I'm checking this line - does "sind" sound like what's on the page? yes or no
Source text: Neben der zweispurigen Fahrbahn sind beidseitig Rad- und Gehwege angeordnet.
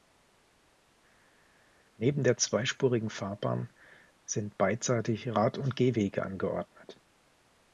yes